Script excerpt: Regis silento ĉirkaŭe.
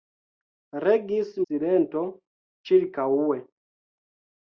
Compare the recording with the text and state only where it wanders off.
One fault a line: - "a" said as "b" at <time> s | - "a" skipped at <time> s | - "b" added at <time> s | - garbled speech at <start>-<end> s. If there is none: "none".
none